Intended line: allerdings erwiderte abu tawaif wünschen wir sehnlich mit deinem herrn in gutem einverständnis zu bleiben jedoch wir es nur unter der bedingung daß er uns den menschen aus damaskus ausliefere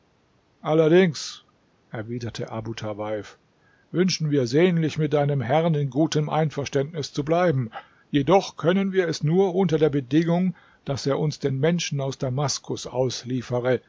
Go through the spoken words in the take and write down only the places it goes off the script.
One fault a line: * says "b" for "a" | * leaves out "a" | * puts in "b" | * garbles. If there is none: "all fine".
* puts in "können"